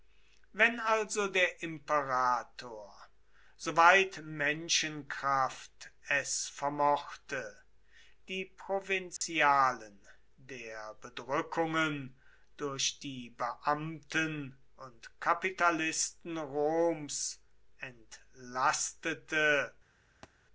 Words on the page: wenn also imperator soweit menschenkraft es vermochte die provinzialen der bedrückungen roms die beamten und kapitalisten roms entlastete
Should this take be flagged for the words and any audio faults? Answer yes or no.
yes